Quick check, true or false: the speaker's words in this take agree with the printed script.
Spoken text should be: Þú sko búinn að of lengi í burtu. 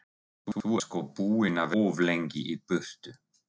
true